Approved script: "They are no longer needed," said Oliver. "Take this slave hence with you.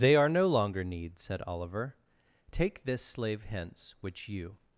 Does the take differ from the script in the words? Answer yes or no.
yes